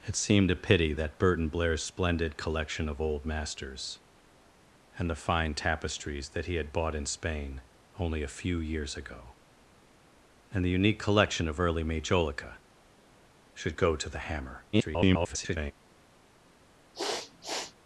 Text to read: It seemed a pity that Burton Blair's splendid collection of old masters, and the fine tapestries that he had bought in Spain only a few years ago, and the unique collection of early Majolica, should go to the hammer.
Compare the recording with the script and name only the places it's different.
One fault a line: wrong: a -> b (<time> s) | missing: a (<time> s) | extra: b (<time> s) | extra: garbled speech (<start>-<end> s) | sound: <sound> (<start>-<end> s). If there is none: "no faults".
extra: garbled speech (14.7-15.7 s)
sound: sniff (16.9-17.7 s)